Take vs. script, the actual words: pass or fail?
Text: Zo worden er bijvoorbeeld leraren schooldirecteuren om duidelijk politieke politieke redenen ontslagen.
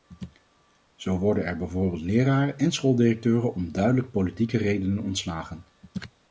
fail